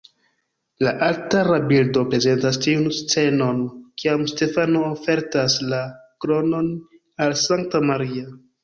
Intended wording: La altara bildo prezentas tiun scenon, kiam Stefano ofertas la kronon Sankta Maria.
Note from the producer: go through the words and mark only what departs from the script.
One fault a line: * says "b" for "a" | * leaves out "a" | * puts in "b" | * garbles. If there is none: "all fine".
* puts in "al"